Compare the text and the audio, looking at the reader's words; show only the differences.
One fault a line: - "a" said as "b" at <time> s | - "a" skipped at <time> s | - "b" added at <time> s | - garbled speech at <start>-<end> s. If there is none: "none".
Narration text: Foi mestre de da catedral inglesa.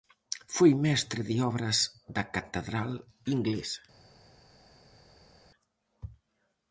- "obras" added at 1.5 s